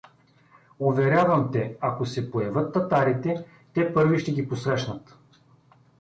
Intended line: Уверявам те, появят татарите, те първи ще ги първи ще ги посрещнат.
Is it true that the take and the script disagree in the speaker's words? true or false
true